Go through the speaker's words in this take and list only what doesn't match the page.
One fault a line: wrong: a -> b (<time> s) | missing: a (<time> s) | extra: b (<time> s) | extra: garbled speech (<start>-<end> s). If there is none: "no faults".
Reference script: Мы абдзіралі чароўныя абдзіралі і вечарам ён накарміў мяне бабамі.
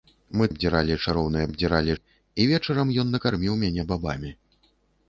no faults